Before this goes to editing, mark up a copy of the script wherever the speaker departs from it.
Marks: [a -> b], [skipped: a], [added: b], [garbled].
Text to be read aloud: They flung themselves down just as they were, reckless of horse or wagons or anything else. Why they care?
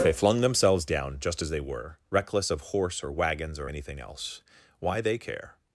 They flung themselves down just as they were, reckless of horse or wagons or anything else. Why they care?